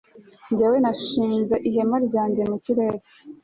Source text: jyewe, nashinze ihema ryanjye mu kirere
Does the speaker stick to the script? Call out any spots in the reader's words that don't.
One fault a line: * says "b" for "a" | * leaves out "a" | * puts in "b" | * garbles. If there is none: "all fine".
all fine